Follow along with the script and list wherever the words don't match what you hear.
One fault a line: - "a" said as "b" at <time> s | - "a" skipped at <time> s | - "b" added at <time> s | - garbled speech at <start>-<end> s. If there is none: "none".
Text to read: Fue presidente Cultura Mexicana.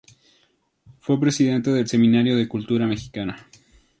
- "del Seminario de" added at 1.7 s